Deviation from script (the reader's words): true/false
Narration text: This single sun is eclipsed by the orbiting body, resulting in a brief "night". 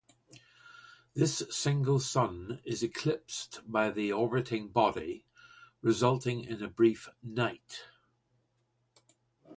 false